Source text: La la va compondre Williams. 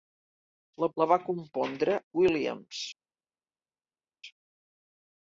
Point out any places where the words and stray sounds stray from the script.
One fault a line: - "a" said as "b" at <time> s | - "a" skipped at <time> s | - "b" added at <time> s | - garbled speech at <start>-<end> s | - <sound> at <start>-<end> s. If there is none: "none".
none